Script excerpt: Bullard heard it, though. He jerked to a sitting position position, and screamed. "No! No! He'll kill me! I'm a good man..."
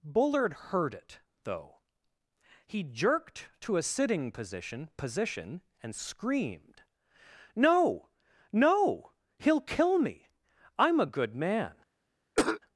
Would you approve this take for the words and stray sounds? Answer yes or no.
no